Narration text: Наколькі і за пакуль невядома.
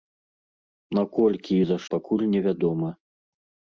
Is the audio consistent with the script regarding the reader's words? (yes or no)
yes